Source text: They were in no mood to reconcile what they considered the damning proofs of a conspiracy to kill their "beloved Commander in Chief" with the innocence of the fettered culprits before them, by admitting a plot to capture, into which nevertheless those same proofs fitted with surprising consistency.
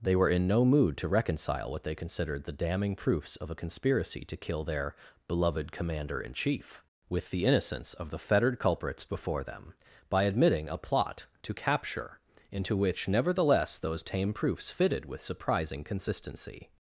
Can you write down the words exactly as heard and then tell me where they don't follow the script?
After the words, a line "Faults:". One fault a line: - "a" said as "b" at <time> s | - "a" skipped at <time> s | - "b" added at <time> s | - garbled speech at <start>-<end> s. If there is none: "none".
They were in no mood to reconcile what they considered the damning proofs of a conspiracy to kill their "beloved Commander in Chief" with the innocence of the fettered culprits before them, by admitting a plot to capture, into which nevertheless those tame proofs fitted with surprising consistency.
Faults:
- "same" said as "tame" at 14.0 s